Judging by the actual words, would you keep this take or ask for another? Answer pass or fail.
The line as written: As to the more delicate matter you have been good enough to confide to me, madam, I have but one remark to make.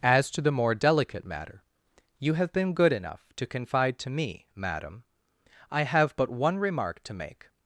pass